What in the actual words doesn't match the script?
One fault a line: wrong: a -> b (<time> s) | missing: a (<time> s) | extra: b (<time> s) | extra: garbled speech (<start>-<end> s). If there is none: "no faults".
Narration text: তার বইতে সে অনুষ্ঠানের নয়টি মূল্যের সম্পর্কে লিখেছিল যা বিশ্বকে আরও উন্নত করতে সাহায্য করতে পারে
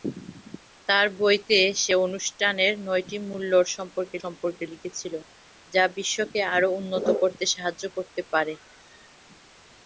extra: সম্পর্কে (4.2 s)